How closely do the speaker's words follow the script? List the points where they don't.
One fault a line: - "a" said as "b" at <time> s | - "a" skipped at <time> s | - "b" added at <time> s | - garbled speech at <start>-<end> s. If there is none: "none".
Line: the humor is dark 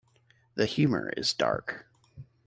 none